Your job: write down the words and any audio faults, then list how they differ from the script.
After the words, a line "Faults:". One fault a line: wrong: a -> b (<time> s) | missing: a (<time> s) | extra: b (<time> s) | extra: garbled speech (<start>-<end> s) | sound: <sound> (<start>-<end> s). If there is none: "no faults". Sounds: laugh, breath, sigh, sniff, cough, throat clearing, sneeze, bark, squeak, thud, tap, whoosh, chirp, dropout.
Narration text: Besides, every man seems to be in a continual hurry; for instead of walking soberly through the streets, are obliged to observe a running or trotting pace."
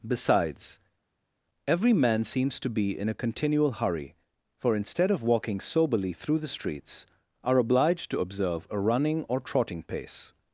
Besides, every man seems to be in a continual hurry; for instead of walking soberly through the streets, are obliged to observe a running or trotting pace."
Faults:
no faults